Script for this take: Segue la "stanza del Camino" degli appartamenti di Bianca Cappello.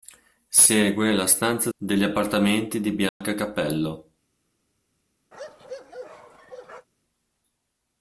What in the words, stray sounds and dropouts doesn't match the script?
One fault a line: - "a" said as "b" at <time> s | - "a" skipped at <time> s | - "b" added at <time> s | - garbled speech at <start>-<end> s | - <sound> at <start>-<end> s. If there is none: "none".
- "del Camino" skipped at 1.7 s
- dropout at 3.1-3.2 s
- bark at 5.3-6.9 s